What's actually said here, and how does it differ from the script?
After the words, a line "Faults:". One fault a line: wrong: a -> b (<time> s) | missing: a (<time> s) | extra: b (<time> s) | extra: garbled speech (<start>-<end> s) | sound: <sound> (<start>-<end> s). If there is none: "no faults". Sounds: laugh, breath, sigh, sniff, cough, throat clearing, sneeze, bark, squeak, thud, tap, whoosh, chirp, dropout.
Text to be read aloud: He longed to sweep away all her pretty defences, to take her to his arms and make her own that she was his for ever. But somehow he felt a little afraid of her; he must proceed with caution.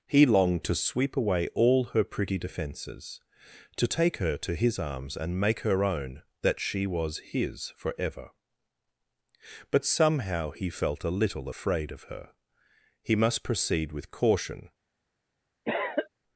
He longed to sweep away all her pretty defences, to take her to his arms and make her own that she was his for ever. But somehow he felt a little afraid of her; he must proceed with caution.
Faults:
sound: cough (15.6-16.1 s)